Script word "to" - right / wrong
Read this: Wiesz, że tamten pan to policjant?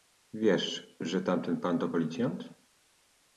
right